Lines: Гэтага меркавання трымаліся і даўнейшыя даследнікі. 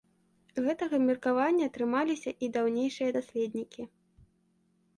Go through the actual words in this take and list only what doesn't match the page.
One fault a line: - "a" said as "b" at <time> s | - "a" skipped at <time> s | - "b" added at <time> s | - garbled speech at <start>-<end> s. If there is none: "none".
none